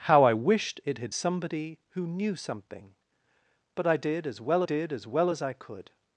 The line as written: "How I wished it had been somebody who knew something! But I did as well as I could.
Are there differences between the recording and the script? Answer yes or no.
yes